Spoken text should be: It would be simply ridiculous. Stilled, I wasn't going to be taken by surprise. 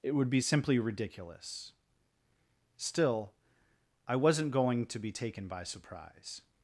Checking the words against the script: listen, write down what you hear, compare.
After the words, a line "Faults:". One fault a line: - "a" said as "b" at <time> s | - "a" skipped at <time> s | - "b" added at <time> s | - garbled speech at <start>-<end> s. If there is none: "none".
It would be simply ridiculous. Still, I wasn't going to be taken by surprise.
Faults:
- "Stilled" said as "Still" at 2.8 s